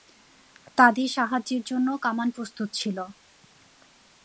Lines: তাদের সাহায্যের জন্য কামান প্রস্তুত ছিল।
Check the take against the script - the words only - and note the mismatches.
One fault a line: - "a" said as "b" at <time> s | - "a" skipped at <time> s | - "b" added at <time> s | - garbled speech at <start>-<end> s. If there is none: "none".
none